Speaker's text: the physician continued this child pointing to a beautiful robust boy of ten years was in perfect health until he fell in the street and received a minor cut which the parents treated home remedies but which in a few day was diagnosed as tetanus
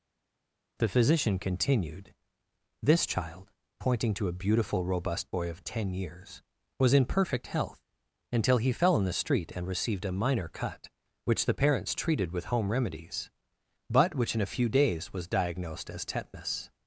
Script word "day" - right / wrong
wrong